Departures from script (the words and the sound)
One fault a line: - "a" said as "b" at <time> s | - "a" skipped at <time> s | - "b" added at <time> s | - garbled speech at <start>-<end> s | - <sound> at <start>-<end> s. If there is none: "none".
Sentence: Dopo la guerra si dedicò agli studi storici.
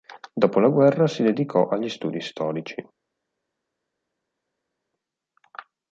none